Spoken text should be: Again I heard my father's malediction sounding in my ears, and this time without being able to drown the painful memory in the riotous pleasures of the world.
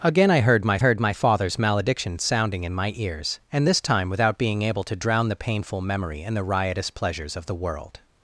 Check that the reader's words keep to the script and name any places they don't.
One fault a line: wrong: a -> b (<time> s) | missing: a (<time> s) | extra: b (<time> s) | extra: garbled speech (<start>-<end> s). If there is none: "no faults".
extra: heard my (0.8 s)